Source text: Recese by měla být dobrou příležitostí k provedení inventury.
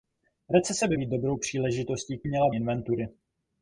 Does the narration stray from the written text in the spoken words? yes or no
yes